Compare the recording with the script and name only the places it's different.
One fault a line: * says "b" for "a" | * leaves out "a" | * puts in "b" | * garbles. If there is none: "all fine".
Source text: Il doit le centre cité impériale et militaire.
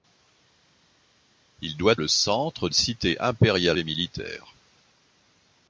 all fine